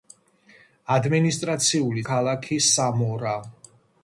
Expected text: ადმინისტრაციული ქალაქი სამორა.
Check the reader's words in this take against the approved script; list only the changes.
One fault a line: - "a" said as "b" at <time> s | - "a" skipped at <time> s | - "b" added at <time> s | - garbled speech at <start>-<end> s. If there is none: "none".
none